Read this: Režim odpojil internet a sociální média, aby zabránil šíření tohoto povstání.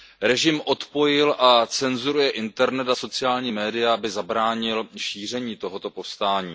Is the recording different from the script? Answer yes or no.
yes